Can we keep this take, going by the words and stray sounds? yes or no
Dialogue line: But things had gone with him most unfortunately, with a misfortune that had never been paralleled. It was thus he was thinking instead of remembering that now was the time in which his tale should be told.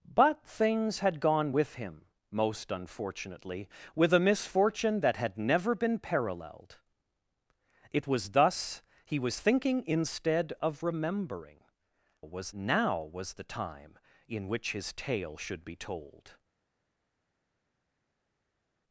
no